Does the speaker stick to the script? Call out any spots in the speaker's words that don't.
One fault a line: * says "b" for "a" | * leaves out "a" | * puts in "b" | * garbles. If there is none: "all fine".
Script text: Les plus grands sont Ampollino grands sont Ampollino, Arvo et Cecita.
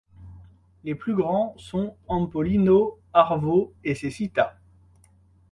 * leaves out "grands sont Ampollino"